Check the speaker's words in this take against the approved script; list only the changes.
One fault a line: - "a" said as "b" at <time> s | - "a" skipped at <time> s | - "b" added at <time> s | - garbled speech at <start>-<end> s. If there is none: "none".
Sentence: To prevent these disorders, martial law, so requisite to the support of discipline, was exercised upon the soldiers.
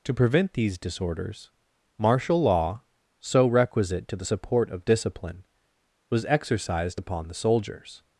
none